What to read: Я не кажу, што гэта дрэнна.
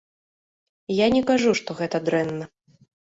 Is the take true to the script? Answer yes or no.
yes